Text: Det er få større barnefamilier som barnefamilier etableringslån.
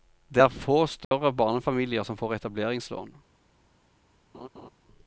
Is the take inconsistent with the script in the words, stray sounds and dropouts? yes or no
yes